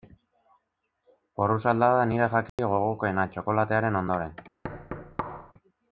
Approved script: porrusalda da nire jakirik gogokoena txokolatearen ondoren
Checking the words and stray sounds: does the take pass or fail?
fail